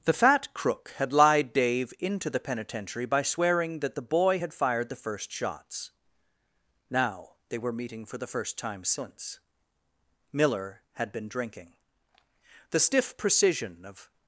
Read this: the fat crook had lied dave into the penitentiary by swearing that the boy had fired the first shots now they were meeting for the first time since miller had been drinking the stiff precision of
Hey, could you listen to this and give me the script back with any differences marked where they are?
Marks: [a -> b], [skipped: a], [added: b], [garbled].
the fat crook had lied dave into the penitentiary by swearing that the boy had fired the first shots now they were meeting for the first time since miller had been drinking the stiff precision of